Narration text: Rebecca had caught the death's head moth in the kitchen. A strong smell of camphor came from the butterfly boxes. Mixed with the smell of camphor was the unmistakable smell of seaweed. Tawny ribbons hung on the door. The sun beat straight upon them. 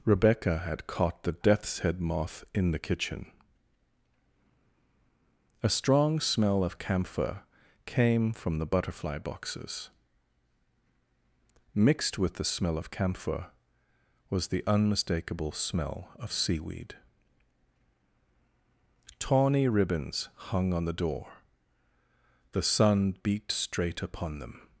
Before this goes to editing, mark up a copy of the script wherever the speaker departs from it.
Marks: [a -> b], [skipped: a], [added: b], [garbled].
Rebecca had caught the death's head moth in the kitchen. A strong smell of camphor came from the butterfly boxes. Mixed with the smell of camphor was the unmistakable smell of seaweed. Tawny ribbons hung on the door. The sun beat straight upon them.